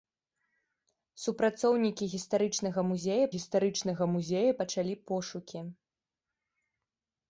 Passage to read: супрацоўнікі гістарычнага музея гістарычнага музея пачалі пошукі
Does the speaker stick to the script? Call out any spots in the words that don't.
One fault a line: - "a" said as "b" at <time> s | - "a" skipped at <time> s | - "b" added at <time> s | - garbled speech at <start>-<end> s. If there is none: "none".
none